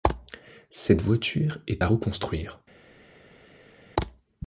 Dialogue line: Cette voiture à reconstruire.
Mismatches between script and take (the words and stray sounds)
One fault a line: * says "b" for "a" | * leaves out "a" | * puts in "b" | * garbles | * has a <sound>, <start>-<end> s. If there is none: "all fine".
* puts in "est"